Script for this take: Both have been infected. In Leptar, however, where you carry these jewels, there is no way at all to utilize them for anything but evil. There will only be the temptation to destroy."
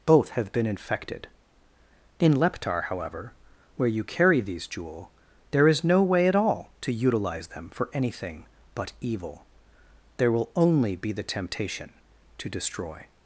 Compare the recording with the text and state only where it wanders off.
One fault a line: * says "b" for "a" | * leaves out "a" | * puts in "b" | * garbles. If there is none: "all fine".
* says "jewel" for "jewels"